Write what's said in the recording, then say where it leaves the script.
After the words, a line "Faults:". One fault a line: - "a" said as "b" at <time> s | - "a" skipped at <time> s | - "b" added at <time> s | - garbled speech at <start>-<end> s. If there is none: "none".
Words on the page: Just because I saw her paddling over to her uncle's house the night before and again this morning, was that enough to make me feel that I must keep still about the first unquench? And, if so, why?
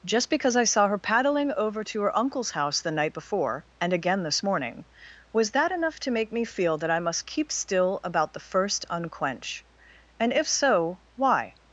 Just because I saw her paddling over to her uncle's house the night before and again this morning, was that enough to make me feel that I must keep still about the first unquench? And, if so, why?
Faults:
none